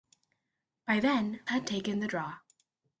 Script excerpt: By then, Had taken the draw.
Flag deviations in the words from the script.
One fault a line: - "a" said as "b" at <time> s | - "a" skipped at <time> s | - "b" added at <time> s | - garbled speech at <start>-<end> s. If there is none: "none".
none